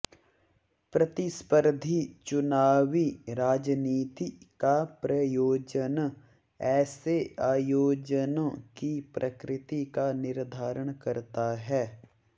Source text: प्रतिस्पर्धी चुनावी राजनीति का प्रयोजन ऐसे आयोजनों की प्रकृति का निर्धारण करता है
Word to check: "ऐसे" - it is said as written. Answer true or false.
true